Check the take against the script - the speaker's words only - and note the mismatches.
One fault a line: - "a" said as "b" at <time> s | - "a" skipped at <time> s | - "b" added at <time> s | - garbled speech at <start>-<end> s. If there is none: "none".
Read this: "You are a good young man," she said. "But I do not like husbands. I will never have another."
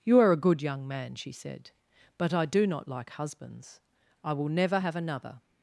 none